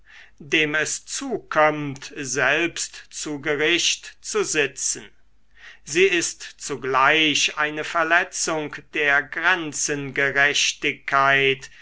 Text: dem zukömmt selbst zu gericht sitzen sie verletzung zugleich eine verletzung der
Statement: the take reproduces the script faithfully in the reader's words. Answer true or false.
false